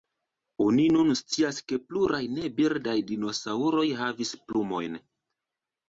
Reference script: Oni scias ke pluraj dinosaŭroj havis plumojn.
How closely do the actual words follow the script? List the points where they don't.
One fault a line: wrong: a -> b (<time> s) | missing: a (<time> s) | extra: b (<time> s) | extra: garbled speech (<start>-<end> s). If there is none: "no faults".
extra: nun (0.9 s)
extra: ne birdaj (2.3 s)